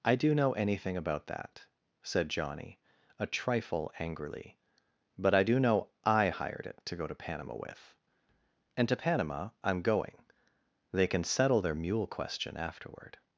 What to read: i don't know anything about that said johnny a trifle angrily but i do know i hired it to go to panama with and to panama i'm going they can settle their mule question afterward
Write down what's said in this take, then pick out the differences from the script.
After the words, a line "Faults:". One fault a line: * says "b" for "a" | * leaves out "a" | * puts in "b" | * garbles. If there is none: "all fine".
i do know anything about that said johnny a trifle angrily but i do know i hired it to go to panama with and to panama i'm going they can settle their mule question afterward
Faults:
* says "do" for "don't"